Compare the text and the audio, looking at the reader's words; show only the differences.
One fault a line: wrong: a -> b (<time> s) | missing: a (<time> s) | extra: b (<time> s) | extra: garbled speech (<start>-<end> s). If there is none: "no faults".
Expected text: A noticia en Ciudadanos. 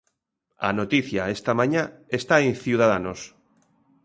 extra: esta mañá está (1.4 s)